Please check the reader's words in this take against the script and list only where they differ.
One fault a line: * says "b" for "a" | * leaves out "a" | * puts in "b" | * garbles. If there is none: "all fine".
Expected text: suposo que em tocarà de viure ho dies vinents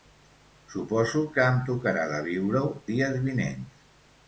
all fine